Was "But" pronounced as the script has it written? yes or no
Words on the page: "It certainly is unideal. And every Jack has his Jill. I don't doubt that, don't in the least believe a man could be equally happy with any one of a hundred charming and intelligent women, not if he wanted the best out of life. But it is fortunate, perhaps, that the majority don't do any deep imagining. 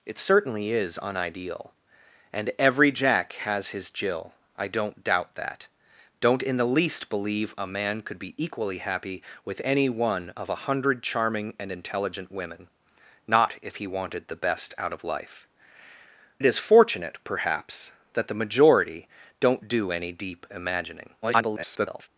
no